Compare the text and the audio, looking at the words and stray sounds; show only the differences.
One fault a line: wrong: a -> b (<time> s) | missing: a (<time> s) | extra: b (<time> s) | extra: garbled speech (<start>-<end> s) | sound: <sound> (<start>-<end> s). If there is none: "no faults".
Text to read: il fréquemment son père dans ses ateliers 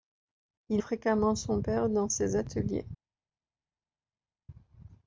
no faults